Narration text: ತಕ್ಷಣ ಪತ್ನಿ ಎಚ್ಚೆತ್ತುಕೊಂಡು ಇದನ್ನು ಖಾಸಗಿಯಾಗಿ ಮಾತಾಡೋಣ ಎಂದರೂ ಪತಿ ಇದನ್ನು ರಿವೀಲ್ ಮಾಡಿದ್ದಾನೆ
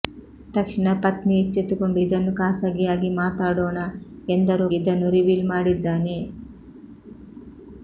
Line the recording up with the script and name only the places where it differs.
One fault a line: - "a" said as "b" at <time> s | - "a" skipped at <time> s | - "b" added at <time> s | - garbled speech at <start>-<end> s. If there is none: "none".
- "ಪತಿ" skipped at 4.7 s